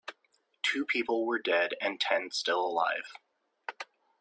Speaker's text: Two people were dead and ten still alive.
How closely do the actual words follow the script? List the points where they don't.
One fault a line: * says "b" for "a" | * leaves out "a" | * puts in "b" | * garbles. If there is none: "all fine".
all fine